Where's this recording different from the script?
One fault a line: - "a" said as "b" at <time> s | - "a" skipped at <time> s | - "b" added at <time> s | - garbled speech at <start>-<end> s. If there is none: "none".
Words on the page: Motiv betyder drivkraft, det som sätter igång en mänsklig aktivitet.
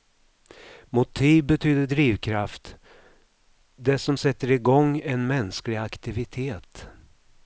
none